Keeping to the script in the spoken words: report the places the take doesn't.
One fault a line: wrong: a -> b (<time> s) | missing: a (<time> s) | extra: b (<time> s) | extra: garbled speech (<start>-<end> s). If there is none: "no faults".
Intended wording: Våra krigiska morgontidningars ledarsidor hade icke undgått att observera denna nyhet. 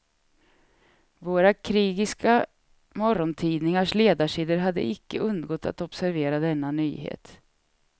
no faults